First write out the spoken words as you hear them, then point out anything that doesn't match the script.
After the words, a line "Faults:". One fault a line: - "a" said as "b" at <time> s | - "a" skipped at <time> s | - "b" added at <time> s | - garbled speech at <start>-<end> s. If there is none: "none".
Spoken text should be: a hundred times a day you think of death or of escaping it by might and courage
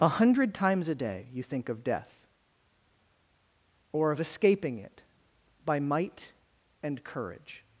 a hundred times a day you think of death or of escaping it by might and courage
Faults:
none